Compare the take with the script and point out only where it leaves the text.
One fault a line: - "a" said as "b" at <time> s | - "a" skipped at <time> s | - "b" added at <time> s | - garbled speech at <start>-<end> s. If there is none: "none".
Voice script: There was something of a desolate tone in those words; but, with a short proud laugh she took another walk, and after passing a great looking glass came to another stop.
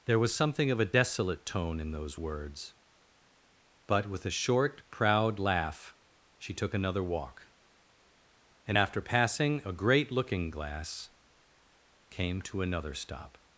none